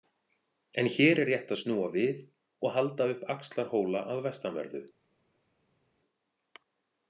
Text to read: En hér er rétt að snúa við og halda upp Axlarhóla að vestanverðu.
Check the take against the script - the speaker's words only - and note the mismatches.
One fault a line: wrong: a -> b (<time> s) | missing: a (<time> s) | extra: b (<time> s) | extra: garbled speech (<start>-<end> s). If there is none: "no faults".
no faults